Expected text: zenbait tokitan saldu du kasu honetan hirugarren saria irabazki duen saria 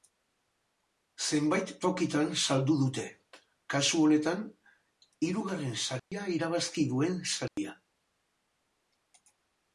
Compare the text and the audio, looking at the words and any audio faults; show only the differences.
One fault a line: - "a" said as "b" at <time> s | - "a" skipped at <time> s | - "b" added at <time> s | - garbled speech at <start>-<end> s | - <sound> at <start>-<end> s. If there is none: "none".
- "du" said as "dute" at 2.8 s
- dropout at 6.0-6.1 s
- dropout at 7.5-7.6 s